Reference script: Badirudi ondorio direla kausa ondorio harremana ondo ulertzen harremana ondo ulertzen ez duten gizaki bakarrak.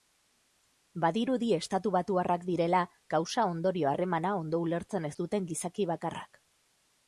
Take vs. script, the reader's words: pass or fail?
fail